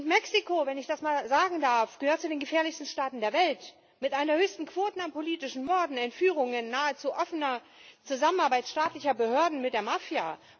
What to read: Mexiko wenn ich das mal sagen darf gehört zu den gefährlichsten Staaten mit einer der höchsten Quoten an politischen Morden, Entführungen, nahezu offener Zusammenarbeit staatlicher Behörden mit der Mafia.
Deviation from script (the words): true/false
true